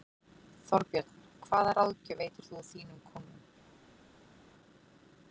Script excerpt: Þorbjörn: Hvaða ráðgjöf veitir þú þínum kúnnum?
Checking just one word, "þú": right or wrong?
right